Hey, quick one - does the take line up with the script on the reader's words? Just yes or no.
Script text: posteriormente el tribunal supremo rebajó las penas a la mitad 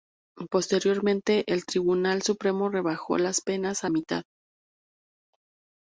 no